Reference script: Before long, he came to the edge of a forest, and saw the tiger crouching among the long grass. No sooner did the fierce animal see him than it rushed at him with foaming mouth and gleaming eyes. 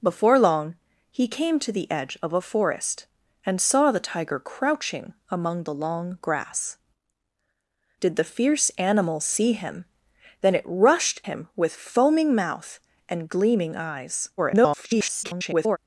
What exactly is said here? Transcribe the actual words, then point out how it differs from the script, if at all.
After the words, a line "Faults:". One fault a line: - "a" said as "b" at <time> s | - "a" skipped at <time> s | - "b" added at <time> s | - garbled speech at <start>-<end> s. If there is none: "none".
Before long, he came to the edge of a forest, and saw the tiger crouching among the long grass. Did the fierce animal see him than it rushed him with foaming mouth and gleaming eyes. [garbled]
Faults:
- "No sooner" skipped at 6.8 s
- "at" skipped at 11.2 s
- garbled speech at 14.4-15.8 s